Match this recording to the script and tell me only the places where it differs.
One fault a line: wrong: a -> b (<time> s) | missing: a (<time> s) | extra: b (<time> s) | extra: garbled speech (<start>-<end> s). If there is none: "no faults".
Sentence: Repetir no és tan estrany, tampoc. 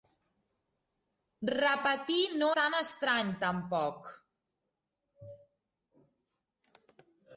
missing: és (2.5 s)